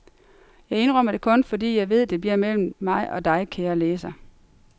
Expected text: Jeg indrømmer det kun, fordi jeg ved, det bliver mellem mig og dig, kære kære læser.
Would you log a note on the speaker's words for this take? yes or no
yes